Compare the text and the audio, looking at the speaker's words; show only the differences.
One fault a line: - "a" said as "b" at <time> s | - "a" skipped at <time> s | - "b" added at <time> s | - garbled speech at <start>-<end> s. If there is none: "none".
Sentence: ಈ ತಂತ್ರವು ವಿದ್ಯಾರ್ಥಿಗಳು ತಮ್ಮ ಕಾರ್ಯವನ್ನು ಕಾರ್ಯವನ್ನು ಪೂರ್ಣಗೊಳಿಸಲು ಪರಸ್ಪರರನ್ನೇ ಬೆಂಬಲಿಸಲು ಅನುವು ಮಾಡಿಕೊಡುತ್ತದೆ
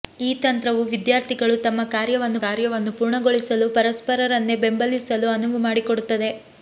none